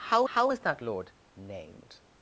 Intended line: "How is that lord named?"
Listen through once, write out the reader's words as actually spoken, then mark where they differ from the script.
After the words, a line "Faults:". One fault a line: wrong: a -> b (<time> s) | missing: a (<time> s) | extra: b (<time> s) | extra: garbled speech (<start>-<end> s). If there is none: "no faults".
"How how is that lord named?"
Faults:
extra: how (0.3 s)